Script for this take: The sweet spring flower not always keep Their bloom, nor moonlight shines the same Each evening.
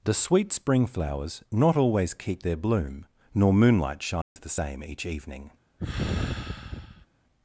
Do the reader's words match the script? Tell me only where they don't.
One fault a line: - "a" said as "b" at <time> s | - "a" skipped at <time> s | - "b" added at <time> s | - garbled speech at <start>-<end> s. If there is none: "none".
- "flower" said as "flowers" at 0.9 s